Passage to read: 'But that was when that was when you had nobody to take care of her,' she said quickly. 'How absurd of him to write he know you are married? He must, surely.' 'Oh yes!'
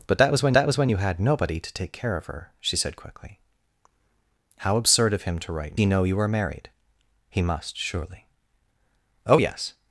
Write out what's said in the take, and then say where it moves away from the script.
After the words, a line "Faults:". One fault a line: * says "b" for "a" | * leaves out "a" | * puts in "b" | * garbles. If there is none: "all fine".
'But that was when that was when you had nobody to take care of her,' she said quickly. 'How absurd of him to write he know you are married? He must, surely.' 'Oh yes!'
Faults:
all fine